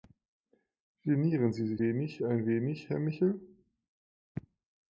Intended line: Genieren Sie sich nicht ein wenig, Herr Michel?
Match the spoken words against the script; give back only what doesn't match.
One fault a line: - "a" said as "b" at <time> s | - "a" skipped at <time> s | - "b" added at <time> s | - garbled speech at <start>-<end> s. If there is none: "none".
- "nicht" said as "wenig" at 1.8 s